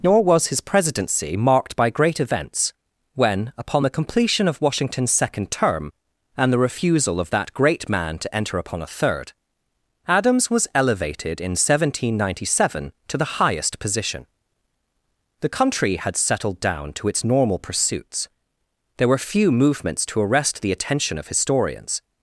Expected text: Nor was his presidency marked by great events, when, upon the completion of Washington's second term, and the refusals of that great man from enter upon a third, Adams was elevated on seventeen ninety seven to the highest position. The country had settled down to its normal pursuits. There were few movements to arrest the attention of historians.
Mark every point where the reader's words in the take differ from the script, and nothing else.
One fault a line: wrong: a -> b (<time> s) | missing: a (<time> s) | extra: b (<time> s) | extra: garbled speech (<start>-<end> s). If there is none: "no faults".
wrong: refusals -> refusal (6.6 s)
wrong: from -> to (8.2 s)
wrong: on -> in (11.4 s)